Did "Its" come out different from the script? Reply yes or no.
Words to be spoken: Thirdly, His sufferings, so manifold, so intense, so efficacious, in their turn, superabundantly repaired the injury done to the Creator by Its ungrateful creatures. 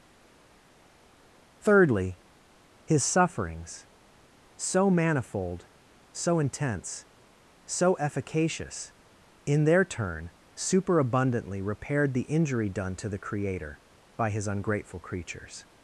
yes